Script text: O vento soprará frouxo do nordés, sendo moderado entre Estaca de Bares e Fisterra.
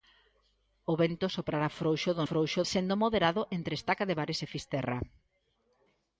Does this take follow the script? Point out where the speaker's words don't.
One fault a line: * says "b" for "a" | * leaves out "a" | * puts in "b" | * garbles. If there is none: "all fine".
* says "frouxo" for "nordés"